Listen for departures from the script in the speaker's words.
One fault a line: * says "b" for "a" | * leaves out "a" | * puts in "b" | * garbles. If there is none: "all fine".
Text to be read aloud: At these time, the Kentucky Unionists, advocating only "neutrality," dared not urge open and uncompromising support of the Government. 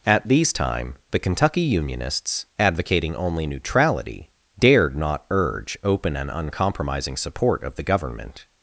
all fine